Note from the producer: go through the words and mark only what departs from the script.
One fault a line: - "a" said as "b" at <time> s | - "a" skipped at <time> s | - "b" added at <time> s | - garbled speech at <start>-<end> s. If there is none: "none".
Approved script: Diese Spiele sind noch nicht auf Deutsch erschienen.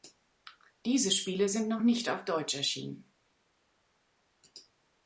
none